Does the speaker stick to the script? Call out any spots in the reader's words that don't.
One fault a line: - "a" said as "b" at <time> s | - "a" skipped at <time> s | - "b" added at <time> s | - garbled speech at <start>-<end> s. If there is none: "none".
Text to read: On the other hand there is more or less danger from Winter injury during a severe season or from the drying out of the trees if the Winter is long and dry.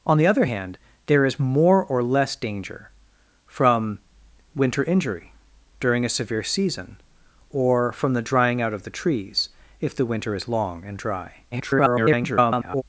- garbled speech at 11.5-12.8 s